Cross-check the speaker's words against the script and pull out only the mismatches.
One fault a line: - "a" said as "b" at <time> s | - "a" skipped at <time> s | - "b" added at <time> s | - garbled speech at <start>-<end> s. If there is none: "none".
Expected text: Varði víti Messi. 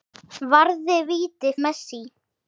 none